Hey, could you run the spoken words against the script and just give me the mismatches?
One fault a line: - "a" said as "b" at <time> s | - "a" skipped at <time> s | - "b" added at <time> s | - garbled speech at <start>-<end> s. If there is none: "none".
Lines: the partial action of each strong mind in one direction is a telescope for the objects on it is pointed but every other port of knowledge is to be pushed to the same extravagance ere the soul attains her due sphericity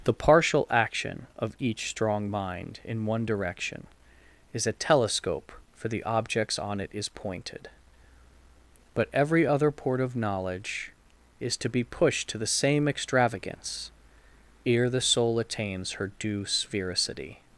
none